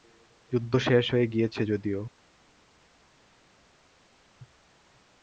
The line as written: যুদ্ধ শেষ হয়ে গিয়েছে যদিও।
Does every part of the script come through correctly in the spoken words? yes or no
yes